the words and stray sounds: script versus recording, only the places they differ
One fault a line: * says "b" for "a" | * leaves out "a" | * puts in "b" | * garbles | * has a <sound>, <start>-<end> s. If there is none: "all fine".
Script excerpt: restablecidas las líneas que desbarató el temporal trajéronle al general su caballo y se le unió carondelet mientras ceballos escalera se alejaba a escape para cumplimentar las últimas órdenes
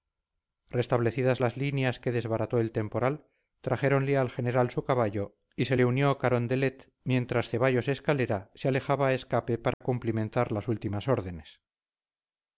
* has a dropout, 9.7-9.8 s